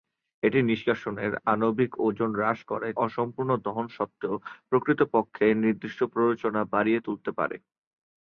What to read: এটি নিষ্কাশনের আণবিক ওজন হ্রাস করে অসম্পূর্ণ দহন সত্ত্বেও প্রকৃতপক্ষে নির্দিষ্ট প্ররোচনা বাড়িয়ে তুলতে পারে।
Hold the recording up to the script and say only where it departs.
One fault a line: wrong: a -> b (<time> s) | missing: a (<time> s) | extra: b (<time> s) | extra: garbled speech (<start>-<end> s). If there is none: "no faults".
no faults